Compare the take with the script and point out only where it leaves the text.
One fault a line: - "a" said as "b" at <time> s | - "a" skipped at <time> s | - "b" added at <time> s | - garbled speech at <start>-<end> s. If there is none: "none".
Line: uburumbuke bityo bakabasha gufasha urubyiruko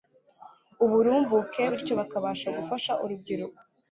none